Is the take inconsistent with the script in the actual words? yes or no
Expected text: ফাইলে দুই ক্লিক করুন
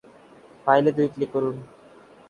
no